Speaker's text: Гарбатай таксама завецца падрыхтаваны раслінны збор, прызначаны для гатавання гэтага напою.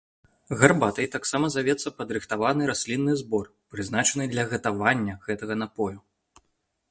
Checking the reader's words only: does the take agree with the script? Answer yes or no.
yes